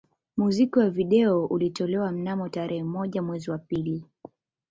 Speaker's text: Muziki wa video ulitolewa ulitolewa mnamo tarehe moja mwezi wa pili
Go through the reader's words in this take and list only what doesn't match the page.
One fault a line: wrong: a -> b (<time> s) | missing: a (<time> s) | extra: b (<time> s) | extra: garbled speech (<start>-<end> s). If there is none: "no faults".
missing: ulitolewa (2.1 s)